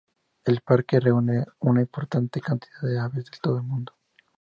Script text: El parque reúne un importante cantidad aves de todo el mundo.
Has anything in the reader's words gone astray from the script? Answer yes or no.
yes